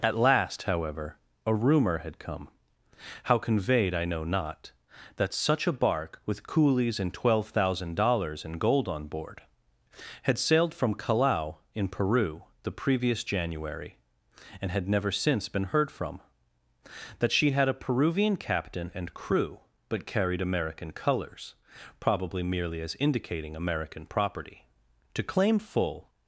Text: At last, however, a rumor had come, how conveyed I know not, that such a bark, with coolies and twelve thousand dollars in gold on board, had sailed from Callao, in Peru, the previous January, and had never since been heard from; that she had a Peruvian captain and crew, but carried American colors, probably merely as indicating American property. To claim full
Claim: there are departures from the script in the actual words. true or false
false